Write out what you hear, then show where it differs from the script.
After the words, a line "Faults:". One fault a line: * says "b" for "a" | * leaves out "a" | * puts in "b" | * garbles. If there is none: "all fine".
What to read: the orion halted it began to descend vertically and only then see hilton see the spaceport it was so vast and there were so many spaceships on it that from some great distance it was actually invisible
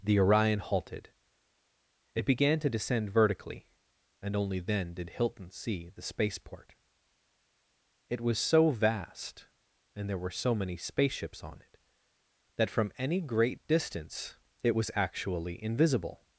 the orion halted it began to descend vertically and only then did hilton see the spaceport it was so vast and there were so many spaceships on it that from any great distance it was actually invisible
Faults:
* says "did" for "see"
* says "any" for "some"